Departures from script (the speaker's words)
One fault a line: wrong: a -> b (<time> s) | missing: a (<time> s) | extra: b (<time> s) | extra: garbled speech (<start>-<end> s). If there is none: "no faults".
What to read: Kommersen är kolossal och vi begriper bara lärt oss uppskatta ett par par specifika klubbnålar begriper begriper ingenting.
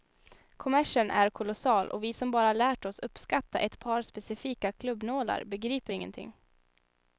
wrong: begriper -> som (2.1 s)
missing: par (4.0 s)
missing: begriper (5.9 s)